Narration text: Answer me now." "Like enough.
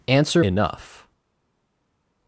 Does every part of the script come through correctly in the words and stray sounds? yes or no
no